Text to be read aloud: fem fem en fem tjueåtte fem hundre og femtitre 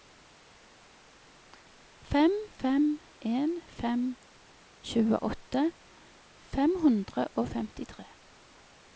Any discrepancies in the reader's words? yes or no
no